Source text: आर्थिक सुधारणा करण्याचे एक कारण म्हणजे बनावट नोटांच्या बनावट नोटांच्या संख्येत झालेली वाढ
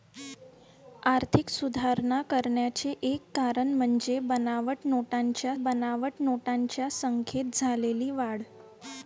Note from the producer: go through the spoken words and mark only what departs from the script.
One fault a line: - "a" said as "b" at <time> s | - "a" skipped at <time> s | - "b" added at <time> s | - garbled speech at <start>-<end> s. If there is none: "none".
none